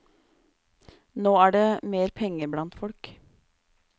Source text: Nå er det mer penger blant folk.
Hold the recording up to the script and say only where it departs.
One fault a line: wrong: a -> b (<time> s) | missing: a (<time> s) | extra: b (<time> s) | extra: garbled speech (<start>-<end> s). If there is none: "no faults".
no faults